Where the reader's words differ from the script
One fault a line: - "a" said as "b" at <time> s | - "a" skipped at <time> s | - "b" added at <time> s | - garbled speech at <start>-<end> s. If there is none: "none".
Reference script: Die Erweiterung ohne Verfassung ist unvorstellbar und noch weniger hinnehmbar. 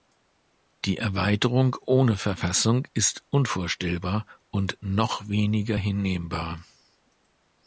none